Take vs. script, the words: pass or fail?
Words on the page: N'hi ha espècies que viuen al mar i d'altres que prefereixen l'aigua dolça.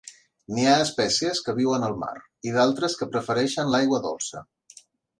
pass